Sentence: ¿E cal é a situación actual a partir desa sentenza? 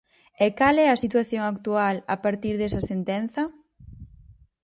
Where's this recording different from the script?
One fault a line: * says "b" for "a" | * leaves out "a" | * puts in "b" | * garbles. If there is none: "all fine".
all fine